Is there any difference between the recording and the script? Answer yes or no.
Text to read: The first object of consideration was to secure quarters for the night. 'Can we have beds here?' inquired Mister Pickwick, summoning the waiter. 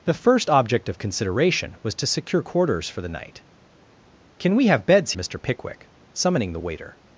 yes